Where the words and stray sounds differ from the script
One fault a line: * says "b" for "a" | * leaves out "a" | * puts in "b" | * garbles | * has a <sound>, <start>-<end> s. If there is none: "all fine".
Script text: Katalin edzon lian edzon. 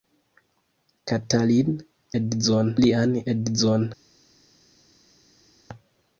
all fine